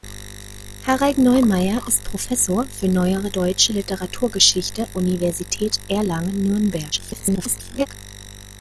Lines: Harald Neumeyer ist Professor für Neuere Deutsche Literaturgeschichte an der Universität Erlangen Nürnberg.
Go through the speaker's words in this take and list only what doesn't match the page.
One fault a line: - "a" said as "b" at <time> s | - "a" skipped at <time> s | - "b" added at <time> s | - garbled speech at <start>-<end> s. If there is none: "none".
- "an der" skipped at 4.9 s
- garbled speech at 6.9-7.9 s